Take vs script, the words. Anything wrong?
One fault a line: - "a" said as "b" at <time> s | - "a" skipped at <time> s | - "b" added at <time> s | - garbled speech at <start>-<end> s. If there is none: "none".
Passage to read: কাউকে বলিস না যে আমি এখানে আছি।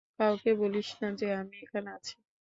none